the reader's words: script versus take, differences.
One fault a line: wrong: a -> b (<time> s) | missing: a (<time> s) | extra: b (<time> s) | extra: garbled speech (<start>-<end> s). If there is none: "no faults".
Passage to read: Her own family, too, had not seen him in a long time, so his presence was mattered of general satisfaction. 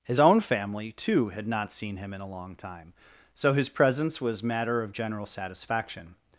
wrong: Her -> His (0.0 s)
wrong: mattered -> matter (4.4 s)